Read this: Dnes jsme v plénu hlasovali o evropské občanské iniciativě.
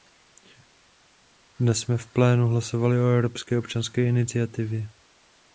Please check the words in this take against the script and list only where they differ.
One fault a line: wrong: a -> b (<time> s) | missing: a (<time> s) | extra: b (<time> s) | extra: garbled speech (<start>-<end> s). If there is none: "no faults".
no faults